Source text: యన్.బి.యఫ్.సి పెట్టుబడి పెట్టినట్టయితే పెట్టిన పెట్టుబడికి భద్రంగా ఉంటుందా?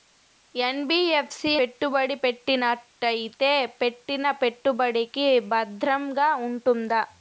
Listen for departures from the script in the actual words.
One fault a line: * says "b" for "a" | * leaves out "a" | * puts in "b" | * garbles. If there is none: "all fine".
all fine